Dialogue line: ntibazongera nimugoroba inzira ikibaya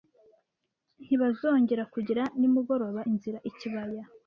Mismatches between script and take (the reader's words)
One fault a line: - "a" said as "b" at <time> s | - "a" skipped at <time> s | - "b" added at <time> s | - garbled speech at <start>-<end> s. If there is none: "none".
- "kugira" added at 1.9 s